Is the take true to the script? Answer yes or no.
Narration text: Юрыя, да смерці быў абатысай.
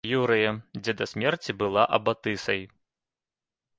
no